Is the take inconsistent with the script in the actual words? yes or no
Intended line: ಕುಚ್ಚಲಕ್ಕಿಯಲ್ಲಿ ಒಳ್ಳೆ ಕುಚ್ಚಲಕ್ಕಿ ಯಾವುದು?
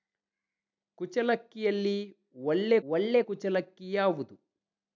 yes